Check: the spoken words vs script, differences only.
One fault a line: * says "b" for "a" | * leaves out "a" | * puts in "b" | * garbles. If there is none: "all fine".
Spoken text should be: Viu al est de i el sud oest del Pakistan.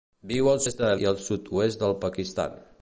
all fine